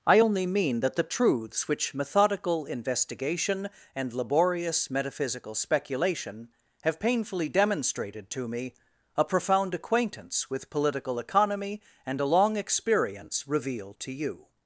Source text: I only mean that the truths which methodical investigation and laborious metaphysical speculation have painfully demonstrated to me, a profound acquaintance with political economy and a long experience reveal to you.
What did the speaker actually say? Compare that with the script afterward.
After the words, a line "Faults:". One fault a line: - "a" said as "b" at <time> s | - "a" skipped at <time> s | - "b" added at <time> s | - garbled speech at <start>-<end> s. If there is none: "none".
I only mean that the truths which methodical investigation and laborious metaphysical speculation have painfully demonstrated to me, a profound acquaintance with political economy and a long experience reveal to you.
Faults:
none